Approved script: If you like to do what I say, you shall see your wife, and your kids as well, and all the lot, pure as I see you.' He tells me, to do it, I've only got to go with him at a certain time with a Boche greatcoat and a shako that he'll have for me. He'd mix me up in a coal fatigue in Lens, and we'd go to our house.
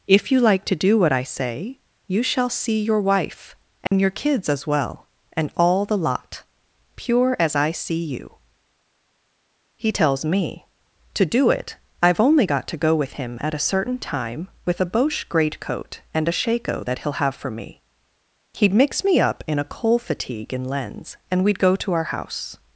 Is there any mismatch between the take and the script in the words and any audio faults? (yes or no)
yes